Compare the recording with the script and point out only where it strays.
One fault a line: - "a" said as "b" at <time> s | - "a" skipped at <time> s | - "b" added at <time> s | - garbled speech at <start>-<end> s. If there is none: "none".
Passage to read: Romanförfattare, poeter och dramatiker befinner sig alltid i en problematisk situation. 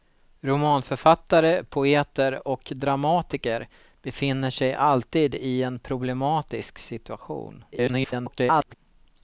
- garbled speech at 7.7-8.7 s